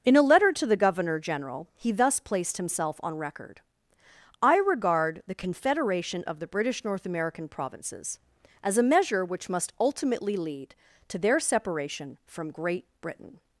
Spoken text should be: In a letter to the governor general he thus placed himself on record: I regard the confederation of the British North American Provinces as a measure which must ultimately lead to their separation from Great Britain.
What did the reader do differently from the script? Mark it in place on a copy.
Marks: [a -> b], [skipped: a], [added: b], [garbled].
In a letter to the governor general he thus placed himself on record: I regard the confederation of the British North American Provinces as a measure which must ultimately lead to their separation from Great Britain.